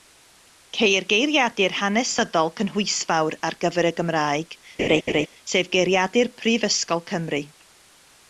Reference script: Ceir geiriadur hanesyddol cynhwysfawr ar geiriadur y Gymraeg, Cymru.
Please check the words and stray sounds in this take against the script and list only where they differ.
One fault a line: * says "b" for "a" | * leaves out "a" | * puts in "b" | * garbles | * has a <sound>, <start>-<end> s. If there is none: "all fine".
* says "gyfer" for "geiriadur"
* has a laugh, 4.8-5.3 s
* puts in "sef Geiriadur Prifysgol"